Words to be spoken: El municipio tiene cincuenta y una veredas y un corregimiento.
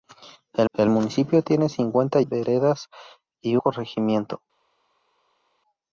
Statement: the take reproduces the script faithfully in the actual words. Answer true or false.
false